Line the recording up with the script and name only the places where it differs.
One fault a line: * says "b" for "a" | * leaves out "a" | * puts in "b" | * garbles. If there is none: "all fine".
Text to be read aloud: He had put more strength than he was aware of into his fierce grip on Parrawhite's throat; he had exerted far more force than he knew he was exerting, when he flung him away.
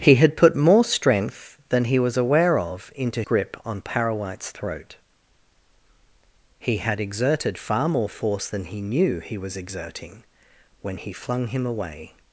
* leaves out "his fierce"